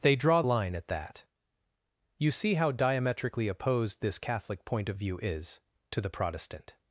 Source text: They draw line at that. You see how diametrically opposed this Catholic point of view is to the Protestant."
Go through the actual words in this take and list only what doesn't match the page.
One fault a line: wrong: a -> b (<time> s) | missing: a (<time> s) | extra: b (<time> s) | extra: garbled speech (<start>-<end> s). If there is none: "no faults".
no faults